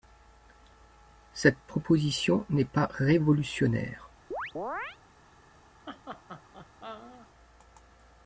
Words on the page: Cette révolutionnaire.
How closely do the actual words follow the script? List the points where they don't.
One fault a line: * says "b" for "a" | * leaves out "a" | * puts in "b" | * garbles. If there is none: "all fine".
* puts in "proposition n'est pas"